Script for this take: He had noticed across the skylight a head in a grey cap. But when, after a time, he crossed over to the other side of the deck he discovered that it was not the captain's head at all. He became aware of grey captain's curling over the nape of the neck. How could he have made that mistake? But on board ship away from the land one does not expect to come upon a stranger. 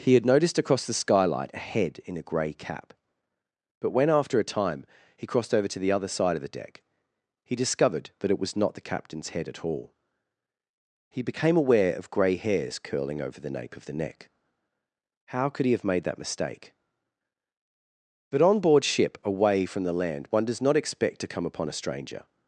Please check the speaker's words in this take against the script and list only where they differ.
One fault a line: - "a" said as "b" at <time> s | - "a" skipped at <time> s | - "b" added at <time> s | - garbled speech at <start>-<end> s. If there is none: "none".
- "captain's" said as "hairs" at 12.4 s